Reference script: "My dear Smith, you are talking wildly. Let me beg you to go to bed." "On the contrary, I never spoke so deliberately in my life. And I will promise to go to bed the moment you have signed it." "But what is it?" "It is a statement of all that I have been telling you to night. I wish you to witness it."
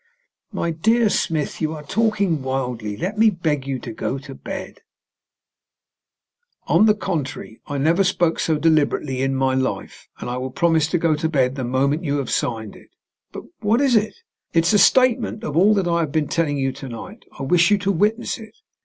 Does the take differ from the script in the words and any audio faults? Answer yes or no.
no